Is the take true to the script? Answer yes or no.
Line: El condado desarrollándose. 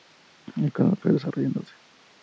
no